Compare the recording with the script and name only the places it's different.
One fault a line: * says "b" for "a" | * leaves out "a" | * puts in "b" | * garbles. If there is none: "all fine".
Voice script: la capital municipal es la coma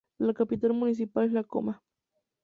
all fine